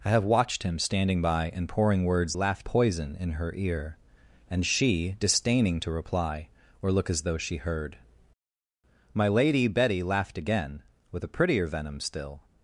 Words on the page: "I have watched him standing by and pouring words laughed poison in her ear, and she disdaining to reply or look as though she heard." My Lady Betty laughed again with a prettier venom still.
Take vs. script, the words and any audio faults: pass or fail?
pass